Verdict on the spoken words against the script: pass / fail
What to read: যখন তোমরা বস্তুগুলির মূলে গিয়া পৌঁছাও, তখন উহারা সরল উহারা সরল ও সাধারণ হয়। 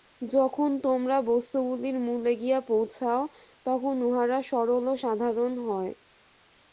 fail